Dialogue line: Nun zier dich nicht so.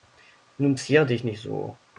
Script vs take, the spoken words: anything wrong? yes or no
no